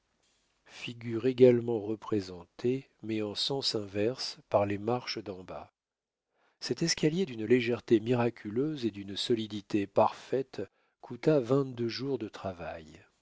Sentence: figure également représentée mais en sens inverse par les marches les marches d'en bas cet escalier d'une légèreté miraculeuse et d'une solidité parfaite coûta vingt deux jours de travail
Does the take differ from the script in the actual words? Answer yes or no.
yes